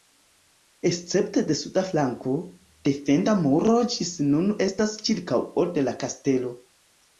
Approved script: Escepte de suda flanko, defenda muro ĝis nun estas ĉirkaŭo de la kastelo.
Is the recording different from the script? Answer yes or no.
no